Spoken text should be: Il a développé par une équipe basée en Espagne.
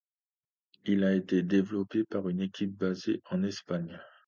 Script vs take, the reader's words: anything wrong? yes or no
yes